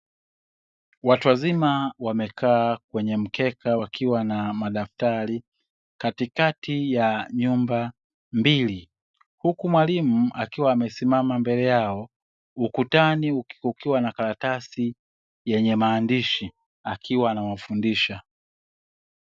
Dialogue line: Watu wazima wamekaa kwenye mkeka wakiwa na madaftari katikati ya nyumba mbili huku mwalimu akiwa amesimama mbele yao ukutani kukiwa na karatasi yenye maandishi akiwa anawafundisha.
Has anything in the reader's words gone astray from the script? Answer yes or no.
no